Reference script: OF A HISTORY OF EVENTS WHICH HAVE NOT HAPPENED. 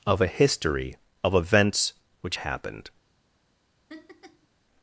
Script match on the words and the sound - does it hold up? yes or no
no